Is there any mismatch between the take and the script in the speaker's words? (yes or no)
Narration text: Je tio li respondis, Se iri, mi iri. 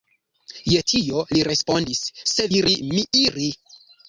no